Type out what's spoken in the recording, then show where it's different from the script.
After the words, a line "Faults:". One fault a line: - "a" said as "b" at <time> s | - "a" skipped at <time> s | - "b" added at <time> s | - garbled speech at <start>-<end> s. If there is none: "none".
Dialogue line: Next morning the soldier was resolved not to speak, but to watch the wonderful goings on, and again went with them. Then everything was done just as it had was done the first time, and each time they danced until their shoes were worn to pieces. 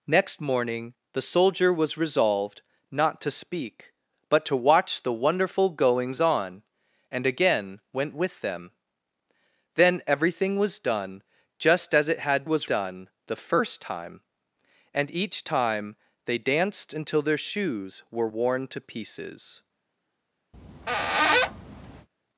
Next morning the soldier was resolved not to speak, but to watch the wonderful goings on, and again went with them. Then everything was done just as it had was done the first time, and each time they danced until their shoes were worn to pieces.
Faults:
none